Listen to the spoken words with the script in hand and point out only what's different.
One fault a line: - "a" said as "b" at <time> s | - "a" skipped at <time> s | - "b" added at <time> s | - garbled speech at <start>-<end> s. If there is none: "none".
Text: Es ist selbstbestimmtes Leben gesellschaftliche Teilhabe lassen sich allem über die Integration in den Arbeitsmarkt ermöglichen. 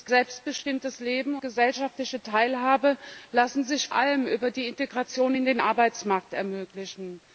none